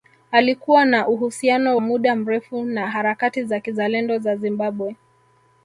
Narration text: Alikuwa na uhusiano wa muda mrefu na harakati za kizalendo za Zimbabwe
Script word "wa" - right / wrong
wrong